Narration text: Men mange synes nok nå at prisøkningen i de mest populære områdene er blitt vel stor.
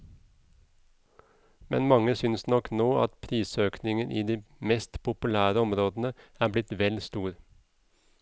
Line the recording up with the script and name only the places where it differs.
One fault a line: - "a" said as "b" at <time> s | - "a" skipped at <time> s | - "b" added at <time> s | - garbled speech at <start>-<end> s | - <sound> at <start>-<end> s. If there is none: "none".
none